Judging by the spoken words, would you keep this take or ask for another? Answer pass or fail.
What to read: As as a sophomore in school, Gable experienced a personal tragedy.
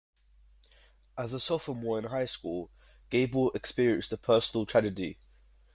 fail